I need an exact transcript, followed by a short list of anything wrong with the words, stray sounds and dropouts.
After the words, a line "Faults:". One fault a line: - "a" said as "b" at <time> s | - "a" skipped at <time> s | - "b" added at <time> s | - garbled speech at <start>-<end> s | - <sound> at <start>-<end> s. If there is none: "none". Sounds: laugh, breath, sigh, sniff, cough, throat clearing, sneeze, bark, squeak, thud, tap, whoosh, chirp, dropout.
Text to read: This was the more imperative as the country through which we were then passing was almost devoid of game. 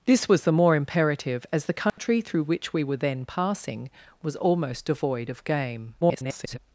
This was the more imperative as the country through which we were then passing was almost devoid of game. [garbled]
Faults:
- dropout at 1.9-2.0 s
- garbled speech at 6.0-6.6 s